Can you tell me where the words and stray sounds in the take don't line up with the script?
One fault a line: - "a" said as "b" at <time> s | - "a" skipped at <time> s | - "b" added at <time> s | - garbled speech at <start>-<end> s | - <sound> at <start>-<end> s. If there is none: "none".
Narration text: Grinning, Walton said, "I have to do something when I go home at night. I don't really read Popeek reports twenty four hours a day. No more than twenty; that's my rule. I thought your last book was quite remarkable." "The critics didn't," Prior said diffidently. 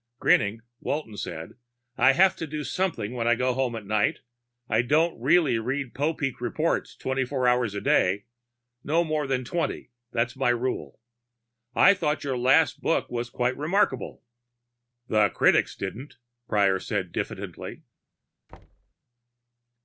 - thud at 18.5-18.9 s